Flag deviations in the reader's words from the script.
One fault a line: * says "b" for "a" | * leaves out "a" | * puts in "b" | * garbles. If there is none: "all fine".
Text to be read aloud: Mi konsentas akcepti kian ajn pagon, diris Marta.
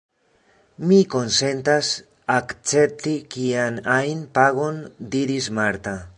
all fine